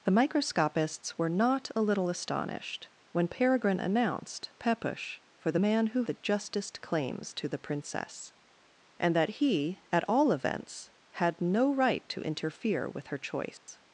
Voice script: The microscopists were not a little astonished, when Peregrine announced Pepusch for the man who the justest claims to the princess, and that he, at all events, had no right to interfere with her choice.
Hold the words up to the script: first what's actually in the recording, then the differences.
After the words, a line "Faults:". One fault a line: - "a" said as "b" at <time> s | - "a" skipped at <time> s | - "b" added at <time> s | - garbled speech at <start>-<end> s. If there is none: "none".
The microscopists were not a little astonished, when Peregrine announced Pepusch for the man who the justest claims to the princess, and that he, at all events, had no right to interfere with her choice.
Faults:
none